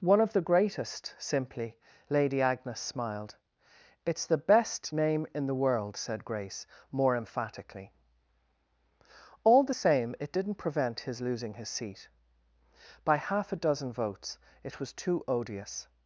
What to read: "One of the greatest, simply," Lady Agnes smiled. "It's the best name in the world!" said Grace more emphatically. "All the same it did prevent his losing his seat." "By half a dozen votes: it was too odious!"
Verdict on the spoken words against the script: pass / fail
fail